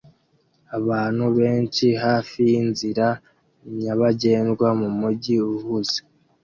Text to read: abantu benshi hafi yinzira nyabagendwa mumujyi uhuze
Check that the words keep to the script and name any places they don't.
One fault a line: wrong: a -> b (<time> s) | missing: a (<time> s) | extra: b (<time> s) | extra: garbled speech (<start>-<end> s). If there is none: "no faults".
no faults